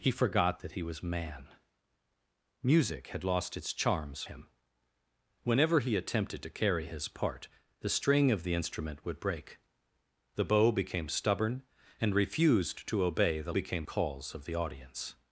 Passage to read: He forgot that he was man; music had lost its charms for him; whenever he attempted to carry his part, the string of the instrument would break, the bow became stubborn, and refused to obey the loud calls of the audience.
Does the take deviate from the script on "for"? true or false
true